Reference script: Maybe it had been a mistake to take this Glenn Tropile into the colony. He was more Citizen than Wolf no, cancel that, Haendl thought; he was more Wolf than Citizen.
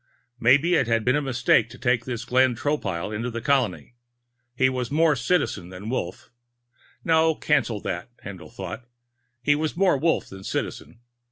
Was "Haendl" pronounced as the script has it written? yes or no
yes